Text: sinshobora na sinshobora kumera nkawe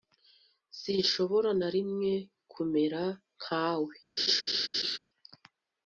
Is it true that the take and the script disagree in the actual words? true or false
true